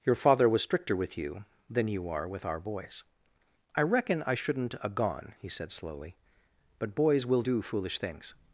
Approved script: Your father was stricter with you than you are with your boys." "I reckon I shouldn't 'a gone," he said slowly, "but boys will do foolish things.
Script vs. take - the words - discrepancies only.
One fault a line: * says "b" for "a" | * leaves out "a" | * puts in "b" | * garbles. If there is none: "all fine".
* says "our" for "your"